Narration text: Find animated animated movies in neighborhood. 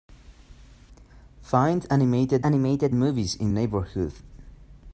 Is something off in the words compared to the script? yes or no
no